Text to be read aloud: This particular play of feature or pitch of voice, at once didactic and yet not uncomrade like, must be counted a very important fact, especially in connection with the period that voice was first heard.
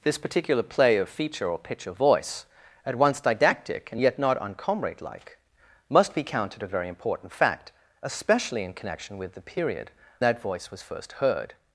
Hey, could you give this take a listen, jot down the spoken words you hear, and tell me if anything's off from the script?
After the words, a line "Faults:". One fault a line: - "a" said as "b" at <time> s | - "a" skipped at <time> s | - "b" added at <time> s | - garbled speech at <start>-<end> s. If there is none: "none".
This particular play of feature or pitch of voice, at once didactic and yet not uncomrade like, must be counted a very important fact, especially in connection with the period that voice was first heard.
Faults:
none